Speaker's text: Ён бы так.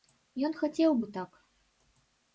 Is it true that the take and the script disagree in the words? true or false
true